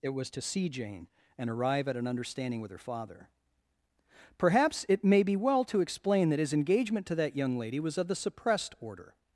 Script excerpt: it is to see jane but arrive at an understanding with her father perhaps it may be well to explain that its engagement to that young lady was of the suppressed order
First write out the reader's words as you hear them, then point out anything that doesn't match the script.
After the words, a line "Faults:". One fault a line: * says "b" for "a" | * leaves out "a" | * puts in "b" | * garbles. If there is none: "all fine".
it was to see jane and arrive at an understanding with her father perhaps it may be well to explain that his engagement to that young lady was of the suppressed order
Faults:
* says "was" for "is"
* says "and" for "but"
* says "his" for "its"